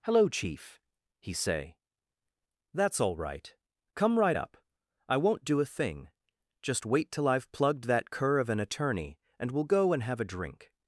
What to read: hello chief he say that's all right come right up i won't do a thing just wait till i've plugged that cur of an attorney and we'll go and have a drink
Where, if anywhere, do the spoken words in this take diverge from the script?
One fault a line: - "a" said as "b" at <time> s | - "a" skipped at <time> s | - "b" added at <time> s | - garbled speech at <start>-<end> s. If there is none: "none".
none